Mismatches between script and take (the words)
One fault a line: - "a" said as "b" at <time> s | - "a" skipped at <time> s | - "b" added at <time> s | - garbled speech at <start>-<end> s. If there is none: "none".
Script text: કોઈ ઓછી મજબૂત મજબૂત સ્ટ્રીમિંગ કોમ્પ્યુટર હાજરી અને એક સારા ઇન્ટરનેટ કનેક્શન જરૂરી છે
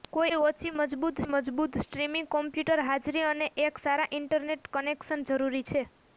none